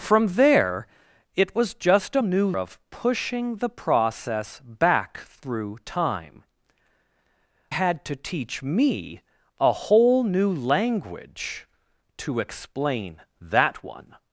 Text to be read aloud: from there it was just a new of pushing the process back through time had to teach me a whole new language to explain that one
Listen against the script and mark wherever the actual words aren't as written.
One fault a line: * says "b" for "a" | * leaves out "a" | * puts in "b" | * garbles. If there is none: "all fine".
all fine